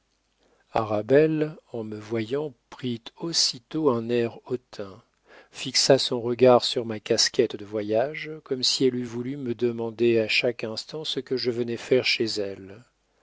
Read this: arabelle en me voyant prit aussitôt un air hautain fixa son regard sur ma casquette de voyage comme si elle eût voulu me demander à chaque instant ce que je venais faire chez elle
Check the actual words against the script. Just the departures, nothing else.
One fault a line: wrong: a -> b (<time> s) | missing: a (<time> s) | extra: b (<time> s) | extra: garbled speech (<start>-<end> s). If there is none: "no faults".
no faults